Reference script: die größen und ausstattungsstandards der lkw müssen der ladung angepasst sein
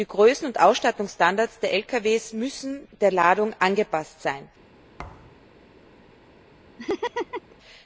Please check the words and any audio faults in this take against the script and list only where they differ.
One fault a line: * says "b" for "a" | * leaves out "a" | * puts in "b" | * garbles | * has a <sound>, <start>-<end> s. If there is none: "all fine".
* has a thud, 5.0-5.5 s
* has a laugh, 6.8-7.6 s